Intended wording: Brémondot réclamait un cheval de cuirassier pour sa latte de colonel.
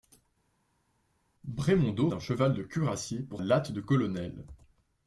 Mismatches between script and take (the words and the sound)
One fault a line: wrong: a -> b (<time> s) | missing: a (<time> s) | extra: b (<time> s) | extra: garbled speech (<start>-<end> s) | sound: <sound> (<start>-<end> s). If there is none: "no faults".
missing: réclamait (2.1 s)
missing: sa (3.4 s)